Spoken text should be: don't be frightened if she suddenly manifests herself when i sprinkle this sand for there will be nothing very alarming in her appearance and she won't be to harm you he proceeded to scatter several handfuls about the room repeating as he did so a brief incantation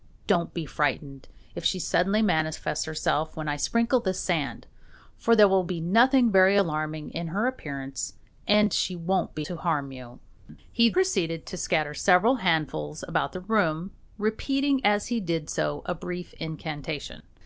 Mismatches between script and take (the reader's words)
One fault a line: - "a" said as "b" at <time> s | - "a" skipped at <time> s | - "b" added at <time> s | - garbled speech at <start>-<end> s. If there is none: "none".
none